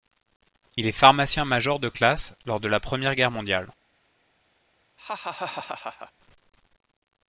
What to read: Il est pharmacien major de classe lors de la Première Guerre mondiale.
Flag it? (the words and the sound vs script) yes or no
yes